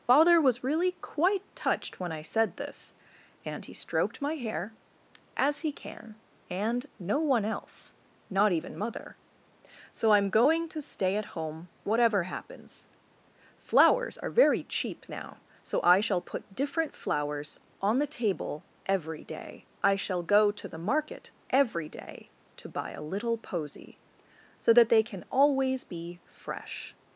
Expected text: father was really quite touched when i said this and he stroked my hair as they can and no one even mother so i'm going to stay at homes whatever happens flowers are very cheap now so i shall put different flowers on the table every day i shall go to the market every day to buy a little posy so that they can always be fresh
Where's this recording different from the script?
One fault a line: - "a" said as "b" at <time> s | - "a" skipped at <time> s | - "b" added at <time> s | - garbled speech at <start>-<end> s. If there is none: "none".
- "they" said as "he" at 5.6 s
- "else not" added at 7.5 s
- "homes" said as "home" at 11.3 s